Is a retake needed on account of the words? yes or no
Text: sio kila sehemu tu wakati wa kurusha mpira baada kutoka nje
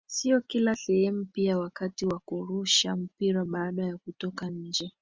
yes